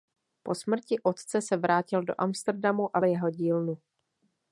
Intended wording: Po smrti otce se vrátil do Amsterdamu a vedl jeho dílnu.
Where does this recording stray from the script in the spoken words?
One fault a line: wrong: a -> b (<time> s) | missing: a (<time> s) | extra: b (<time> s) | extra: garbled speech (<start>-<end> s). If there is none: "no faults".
missing: vedl (3.0 s)